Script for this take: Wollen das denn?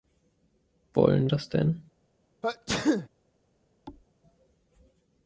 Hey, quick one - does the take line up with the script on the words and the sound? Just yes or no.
no